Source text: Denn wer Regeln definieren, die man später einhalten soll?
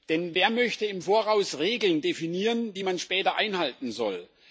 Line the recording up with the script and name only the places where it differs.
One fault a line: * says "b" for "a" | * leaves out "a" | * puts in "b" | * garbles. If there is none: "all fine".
* puts in "möchte im Voraus"